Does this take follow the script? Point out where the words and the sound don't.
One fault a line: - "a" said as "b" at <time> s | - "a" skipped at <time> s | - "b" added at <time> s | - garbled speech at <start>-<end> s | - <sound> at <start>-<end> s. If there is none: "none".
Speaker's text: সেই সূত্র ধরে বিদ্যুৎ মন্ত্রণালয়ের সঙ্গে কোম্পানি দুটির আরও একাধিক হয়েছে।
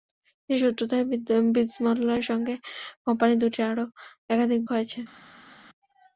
none